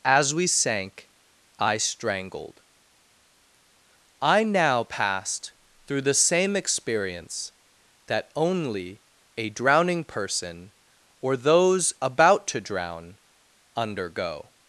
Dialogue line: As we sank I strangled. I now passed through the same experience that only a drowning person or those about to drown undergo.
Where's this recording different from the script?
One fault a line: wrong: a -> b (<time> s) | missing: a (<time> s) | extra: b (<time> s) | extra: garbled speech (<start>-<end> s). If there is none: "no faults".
no faults